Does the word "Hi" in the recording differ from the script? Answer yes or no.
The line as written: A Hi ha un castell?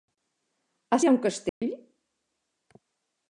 no